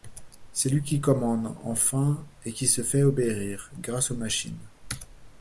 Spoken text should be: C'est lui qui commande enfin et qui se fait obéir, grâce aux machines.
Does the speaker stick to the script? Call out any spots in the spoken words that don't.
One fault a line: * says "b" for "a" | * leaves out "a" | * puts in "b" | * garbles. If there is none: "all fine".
all fine